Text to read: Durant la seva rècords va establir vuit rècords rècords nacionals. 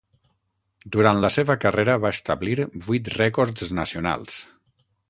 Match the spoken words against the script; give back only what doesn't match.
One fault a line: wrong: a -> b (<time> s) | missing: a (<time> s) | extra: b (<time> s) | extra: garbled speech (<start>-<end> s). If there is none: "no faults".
wrong: rècords -> carrera (1.7 s)
missing: rècords (3.8 s)